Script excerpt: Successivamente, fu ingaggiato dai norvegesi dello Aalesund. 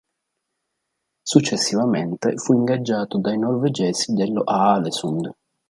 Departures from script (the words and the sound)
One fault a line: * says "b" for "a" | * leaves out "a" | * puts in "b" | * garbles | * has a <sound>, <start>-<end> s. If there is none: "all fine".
all fine